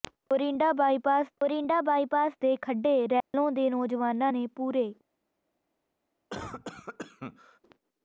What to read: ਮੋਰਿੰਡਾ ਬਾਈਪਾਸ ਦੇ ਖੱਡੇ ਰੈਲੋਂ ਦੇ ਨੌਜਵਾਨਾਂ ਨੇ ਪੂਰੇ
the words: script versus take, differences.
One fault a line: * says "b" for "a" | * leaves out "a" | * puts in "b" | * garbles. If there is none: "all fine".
* puts in "ਮੋਰਿੰਡਾ ਬਾਈਪਾਸ"